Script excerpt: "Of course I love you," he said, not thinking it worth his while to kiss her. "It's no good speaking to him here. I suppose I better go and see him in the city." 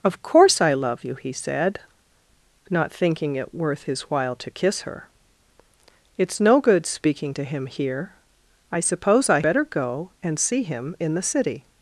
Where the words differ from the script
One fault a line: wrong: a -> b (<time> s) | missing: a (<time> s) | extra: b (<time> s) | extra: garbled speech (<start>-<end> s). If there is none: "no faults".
no faults